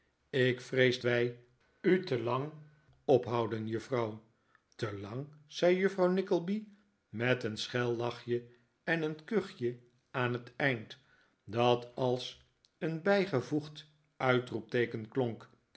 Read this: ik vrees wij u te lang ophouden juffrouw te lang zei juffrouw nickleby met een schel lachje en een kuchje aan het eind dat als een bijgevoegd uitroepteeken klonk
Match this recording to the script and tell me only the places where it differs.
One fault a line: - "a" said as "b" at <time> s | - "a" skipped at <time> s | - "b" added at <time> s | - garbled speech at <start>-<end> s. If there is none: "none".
none